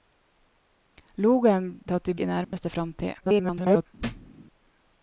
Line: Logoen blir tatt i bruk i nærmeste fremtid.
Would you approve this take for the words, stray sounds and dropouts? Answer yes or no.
no